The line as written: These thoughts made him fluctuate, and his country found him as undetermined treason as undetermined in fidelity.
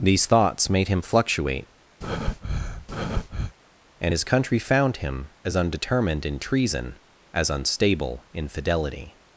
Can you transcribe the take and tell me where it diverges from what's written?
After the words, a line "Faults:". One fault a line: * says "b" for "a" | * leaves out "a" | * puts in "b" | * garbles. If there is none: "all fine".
These thoughts made him fluctuate, and his country found him as undetermined in treason as unstable in fidelity.
Faults:
* puts in "in"
* says "unstable" for "undetermined"